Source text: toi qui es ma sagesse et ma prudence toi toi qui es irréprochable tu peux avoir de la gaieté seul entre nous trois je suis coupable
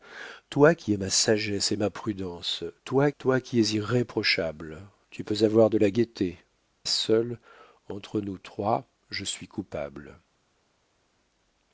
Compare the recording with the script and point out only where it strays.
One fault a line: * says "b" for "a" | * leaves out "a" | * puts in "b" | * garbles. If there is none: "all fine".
all fine